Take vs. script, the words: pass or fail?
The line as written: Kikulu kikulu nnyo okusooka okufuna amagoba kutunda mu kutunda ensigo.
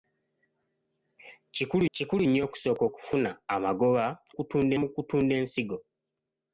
pass